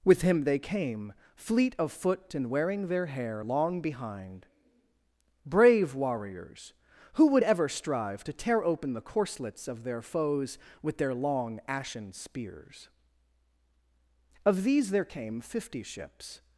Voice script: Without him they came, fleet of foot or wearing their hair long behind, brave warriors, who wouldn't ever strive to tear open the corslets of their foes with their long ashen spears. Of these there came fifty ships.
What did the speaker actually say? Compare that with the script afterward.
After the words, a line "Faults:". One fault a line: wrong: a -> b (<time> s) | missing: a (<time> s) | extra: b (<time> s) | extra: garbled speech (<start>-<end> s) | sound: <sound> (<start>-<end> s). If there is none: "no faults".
With him they came, fleet of foot and wearing their hair long behind, brave warriors, who would ever strive to tear open the corslets of their foes with their long ashen spears. Of these there came fifty ships.
Faults:
wrong: Without -> With (0.0 s)
wrong: or -> and (2.3 s)
wrong: wouldn't -> would (7.3 s)